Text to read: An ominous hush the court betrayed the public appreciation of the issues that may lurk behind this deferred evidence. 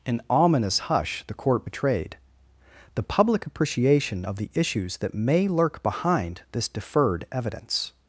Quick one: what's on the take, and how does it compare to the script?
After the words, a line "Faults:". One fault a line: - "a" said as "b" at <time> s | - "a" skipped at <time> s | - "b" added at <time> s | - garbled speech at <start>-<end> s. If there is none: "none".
An ominous hush the court betrayed the public appreciation of the issues that may lurk behind this deferred evidence.
Faults:
none